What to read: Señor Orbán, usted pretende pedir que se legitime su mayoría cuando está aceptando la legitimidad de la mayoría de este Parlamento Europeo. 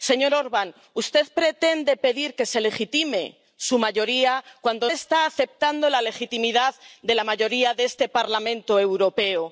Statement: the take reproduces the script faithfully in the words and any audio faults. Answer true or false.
true